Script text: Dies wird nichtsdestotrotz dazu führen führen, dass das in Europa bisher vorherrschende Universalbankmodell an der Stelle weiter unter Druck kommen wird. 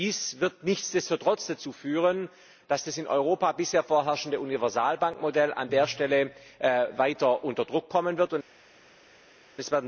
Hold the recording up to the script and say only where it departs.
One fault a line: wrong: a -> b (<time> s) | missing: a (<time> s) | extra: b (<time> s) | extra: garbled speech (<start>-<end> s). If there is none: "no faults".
missing: führen (2.3 s)